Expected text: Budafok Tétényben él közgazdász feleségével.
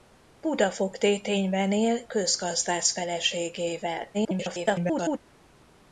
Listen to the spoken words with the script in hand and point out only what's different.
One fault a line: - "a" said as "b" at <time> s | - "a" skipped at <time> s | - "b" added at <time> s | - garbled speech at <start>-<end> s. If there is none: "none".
- garbled speech at 4.1-5.2 s